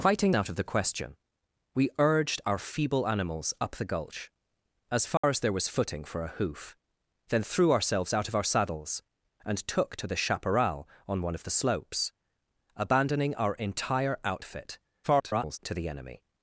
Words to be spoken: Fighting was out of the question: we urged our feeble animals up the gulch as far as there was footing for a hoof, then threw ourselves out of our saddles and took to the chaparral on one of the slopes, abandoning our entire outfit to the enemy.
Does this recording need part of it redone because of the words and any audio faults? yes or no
yes